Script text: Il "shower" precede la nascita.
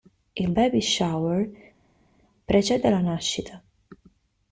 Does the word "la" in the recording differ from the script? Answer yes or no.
no